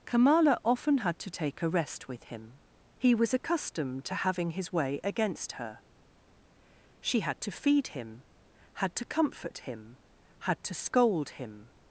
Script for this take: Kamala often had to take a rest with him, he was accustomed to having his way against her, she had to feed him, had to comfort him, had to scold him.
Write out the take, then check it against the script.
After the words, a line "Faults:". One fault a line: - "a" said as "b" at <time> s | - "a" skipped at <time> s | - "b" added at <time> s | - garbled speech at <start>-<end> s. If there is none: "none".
Kamala often had to take a rest with him, he was accustomed to having his way against her, she had to feed him, had to comfort him, had to scold him.
Faults:
none